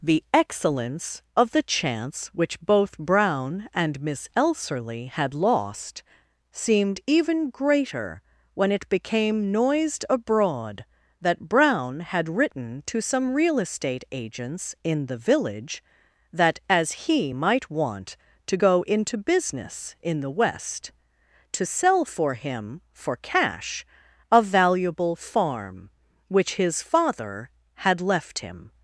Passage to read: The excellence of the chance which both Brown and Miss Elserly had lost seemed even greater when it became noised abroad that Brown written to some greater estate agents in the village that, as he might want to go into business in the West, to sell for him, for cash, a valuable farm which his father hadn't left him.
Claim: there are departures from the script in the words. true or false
true